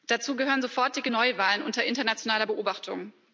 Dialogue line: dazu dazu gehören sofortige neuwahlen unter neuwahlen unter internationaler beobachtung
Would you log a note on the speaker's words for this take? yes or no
yes